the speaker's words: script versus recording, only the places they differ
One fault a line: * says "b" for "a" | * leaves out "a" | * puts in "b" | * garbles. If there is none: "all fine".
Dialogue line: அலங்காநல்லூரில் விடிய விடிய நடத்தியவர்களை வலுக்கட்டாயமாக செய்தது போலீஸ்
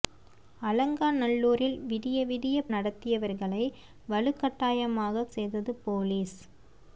all fine